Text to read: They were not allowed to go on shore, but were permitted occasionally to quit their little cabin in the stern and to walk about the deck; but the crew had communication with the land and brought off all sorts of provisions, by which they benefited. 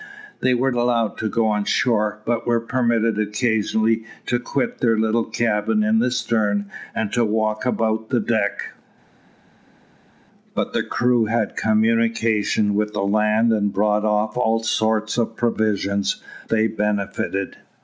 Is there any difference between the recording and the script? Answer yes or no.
yes